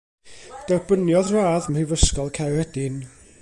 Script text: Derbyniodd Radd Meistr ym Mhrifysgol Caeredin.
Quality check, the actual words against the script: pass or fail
fail